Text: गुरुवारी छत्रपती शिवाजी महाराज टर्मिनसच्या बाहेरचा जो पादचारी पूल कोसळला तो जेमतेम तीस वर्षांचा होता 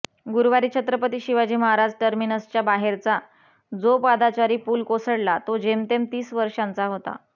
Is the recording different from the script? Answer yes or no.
no